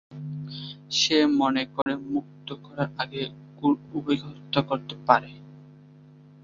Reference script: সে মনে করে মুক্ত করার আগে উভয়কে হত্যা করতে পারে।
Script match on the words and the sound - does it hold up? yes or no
no